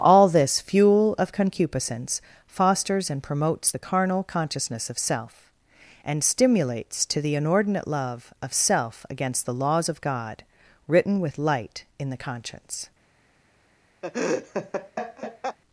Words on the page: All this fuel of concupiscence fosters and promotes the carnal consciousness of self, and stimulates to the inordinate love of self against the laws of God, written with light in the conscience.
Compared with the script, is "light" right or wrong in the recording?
right